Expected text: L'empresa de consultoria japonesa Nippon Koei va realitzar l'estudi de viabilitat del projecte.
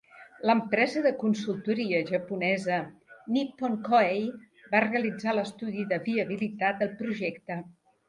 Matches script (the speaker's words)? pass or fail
pass